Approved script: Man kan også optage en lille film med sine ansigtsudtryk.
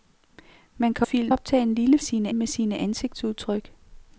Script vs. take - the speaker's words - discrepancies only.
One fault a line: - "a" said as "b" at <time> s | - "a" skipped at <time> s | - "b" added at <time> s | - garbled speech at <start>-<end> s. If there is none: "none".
- "også" said as "film" at 1.0 s
- "film" said as "sine" at 2.0 s